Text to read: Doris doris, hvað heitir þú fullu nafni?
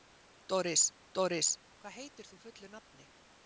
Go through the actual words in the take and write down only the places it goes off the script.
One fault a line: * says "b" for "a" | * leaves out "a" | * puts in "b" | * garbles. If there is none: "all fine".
all fine